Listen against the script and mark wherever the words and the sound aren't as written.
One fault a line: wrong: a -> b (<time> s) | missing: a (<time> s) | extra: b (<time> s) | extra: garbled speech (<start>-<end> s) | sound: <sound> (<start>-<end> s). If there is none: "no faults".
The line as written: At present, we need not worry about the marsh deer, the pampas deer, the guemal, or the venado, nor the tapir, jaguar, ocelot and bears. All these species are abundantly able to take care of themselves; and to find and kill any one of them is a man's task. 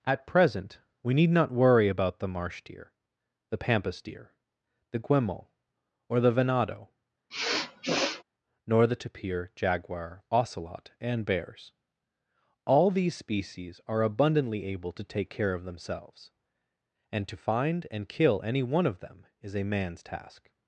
sound: sniff (7.3-8.2 s)